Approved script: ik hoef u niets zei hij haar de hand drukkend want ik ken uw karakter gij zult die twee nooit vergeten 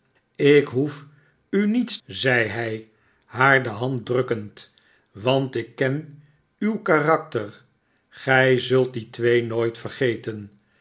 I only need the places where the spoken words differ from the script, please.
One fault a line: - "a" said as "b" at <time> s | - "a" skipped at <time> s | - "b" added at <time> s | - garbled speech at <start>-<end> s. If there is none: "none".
none